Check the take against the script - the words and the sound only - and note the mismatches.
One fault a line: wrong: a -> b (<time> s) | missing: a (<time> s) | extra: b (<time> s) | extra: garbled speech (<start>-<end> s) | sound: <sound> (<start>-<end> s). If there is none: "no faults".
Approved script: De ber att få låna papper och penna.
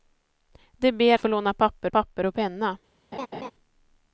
missing: att (1.2 s)
extra: papper (1.9 s)
sound: laugh (3.1-3.5 s)